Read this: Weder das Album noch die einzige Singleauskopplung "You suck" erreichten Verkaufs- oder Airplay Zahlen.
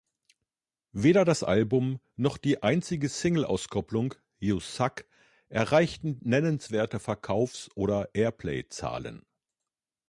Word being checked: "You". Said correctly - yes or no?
yes